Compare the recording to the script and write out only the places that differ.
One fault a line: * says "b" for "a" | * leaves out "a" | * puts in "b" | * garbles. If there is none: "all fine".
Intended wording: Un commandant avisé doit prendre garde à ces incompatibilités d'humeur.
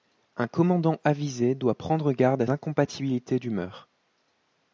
* leaves out "ces"